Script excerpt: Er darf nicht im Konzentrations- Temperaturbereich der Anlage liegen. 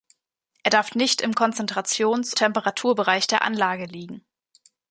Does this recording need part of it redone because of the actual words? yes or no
no